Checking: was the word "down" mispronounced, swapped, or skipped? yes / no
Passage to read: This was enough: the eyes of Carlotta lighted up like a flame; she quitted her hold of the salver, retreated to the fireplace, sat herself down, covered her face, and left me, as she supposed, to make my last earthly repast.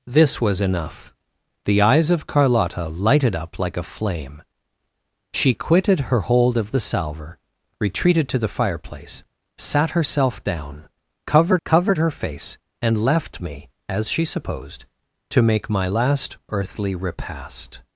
no